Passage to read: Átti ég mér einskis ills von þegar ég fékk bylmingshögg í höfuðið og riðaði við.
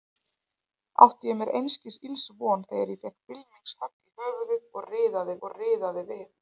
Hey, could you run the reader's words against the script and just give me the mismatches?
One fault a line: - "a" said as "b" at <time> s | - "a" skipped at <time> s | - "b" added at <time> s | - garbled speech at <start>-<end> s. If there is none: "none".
- "og riðaði" added at 5.5 s